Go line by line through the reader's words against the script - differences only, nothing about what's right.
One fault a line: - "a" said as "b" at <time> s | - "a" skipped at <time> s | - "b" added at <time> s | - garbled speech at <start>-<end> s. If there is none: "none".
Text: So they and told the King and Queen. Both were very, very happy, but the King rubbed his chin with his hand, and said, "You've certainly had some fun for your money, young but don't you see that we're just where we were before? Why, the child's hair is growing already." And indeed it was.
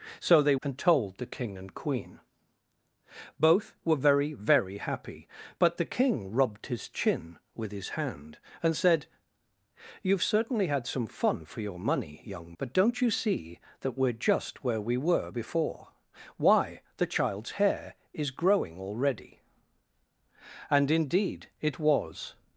none